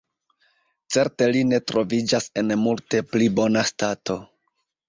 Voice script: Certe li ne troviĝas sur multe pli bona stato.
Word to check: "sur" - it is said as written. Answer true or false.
false